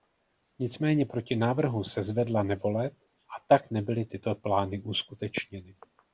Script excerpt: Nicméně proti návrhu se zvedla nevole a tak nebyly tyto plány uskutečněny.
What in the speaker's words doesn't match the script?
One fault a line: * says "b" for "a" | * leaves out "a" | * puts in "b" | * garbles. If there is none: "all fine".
all fine